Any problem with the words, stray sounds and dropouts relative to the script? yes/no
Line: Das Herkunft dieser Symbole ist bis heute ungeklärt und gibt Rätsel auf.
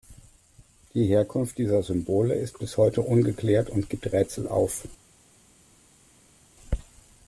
yes